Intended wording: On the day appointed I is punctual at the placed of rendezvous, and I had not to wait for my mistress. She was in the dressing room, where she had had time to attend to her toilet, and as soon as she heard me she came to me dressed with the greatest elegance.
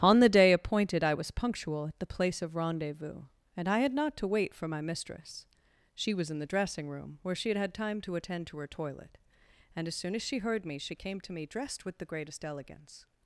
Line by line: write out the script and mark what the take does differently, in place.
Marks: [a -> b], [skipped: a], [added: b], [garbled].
On the day appointed I [is -> was] punctual at the [placed -> place] of rendezvous, and I had not to wait for my mistress. She was in the dressing room, where she had had time to attend to her toilet, and as soon as she heard me she came to me dressed with the greatest elegance.